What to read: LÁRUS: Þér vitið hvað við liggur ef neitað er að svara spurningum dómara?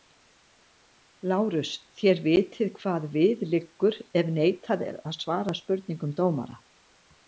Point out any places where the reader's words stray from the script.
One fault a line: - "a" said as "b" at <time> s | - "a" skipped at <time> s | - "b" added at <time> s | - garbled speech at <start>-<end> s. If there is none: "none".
none